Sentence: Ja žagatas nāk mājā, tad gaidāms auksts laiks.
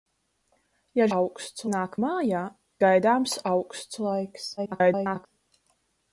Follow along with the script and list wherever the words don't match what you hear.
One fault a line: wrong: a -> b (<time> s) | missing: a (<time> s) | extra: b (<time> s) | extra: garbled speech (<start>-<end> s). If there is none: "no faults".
wrong: žagatas -> auksts (1.2 s)
missing: tad (2.4 s)
extra: garbled speech (4.6-5.3 s)